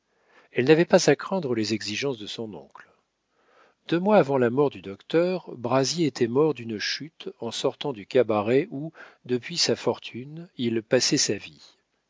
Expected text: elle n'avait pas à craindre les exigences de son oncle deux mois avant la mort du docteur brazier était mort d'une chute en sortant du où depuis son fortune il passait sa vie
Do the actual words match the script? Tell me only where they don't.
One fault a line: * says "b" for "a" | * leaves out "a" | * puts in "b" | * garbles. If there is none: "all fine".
* puts in "cabaret"
* says "sa" for "son"